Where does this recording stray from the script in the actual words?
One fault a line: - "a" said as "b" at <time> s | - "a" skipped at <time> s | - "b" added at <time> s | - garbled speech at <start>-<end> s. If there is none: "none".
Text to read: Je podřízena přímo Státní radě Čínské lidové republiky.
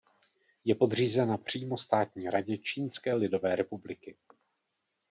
none